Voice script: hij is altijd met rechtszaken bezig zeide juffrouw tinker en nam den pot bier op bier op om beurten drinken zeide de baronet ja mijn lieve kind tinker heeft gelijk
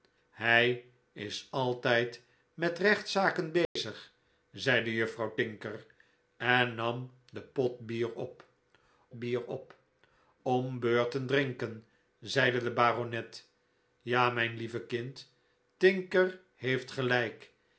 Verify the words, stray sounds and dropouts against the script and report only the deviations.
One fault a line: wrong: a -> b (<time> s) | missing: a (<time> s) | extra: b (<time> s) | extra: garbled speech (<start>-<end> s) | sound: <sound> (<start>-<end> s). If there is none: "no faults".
sound: dropout (3.6-3.8 s)